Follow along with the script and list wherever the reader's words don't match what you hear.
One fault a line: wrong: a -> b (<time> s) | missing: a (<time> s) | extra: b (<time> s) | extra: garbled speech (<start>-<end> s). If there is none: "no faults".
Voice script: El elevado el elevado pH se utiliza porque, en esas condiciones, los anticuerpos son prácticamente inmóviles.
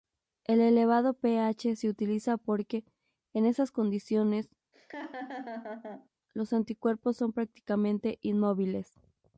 missing: el elevado (1.1 s)